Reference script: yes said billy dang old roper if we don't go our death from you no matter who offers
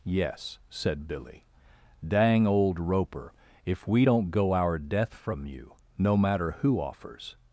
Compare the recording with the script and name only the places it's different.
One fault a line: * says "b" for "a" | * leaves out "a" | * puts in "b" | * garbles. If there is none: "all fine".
all fine